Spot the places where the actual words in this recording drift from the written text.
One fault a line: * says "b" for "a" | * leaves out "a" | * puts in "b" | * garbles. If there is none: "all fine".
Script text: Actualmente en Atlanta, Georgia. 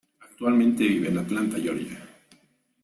* puts in "vive"